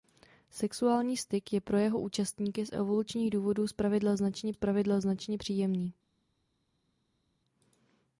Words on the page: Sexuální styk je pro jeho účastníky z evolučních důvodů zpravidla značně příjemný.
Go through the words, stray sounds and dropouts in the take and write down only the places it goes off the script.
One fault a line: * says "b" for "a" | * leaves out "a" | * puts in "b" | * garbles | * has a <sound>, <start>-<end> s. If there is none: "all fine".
* puts in "zpravidla značně"